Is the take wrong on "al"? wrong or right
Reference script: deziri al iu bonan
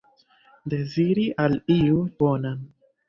right